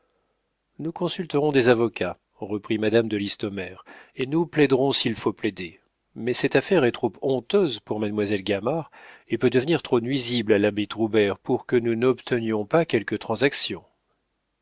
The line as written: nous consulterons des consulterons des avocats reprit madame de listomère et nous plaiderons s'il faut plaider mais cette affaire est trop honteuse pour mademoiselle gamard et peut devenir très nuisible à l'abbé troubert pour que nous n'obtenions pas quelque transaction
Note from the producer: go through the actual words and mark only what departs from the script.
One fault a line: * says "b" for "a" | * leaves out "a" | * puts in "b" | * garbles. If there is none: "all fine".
* leaves out "consulterons des"
* says "trop" for "très"